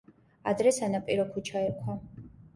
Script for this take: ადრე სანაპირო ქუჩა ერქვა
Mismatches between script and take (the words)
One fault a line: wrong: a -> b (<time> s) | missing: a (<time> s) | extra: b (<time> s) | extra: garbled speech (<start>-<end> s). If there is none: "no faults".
no faults